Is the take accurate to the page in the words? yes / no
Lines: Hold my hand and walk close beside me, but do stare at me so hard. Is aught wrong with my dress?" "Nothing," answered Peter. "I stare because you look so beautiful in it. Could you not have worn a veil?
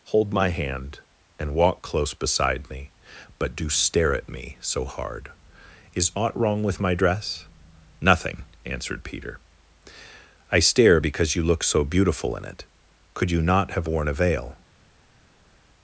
yes